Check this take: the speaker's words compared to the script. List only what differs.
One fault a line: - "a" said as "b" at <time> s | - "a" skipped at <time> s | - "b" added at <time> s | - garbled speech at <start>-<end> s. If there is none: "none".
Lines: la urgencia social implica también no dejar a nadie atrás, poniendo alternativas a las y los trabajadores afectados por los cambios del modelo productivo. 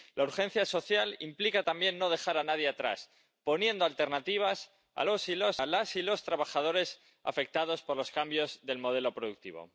none